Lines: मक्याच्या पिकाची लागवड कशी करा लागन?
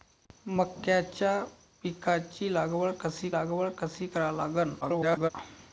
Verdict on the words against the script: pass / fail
fail